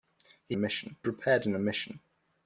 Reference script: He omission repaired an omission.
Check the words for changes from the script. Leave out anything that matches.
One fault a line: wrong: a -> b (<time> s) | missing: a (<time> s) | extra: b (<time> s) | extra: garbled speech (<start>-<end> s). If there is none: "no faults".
no faults